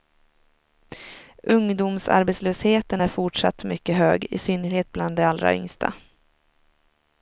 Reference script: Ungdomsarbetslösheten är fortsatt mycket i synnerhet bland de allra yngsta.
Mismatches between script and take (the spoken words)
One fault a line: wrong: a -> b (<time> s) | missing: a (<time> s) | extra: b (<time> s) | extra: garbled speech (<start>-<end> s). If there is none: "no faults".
extra: hög (4.0 s)